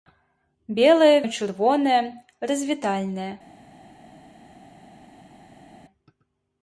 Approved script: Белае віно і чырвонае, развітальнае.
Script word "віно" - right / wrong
wrong